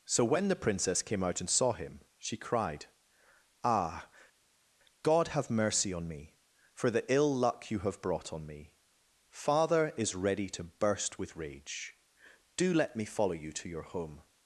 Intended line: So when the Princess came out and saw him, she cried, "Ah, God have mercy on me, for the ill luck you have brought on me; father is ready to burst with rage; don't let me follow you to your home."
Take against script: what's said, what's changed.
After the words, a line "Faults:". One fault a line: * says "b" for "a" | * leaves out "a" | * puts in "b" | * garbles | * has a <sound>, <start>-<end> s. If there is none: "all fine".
So when the Princess came out and saw him, she cried, "Ah, God have mercy on me, for the ill luck you have brought on me; father is ready to burst with rage; do let me follow you to your home."
Faults:
* says "do" for "don't"